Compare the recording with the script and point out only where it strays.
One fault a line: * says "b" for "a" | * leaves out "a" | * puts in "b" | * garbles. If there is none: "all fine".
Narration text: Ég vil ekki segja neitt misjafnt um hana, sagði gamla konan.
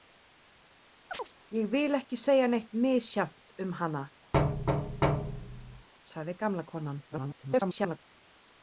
* garbles